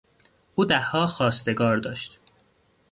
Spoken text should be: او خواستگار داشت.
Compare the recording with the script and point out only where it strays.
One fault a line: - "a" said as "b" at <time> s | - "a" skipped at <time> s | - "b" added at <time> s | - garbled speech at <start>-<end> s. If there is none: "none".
- "دهها" added at 0.7 s